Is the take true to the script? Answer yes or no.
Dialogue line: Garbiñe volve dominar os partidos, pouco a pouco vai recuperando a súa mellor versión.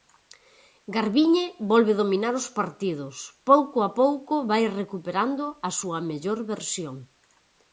yes